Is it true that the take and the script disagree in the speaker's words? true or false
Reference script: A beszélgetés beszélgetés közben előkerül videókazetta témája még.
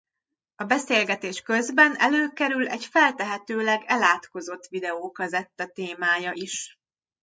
true